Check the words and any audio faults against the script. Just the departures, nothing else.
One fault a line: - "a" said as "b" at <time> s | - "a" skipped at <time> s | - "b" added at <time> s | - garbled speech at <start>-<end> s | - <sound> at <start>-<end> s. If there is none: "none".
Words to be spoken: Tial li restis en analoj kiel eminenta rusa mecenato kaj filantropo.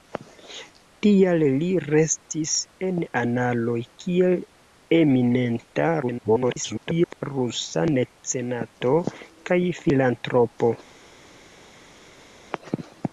- garbled speech at 6.0-7.2 s